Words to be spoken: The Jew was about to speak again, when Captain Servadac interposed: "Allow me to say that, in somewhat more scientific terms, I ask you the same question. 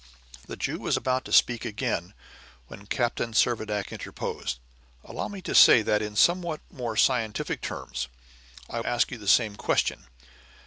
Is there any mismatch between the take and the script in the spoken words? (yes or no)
no